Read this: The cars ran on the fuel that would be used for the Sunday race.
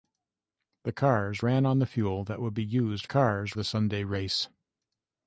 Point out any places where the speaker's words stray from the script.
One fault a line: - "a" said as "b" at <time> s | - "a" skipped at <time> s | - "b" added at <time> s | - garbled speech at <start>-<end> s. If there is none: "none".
- "for" said as "cars" at 3.0 s